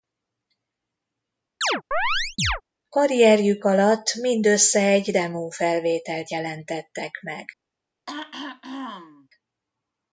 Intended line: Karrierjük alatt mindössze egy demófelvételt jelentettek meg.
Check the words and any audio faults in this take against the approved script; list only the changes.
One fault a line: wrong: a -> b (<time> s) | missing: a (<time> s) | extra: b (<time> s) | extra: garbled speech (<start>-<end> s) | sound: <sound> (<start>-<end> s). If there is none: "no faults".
sound: chirp (1.6-2.6 s)
sound: throat clearing (8.1-9.3 s)